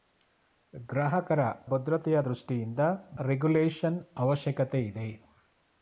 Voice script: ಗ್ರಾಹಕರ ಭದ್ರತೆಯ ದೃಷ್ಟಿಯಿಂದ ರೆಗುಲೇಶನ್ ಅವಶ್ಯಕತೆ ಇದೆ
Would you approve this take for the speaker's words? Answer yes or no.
yes